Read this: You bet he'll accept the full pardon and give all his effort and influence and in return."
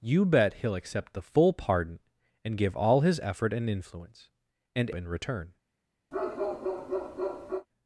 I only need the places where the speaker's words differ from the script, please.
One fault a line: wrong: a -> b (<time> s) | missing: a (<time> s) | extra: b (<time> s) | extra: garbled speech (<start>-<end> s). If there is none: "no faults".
no faults